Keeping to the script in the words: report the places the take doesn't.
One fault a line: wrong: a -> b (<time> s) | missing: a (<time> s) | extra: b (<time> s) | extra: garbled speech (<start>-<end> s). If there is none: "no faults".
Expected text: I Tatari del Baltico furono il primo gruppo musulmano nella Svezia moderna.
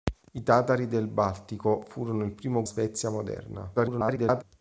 missing: gruppo musulmano nella (2.6 s)
extra: garbled speech (3.8-4.4 s)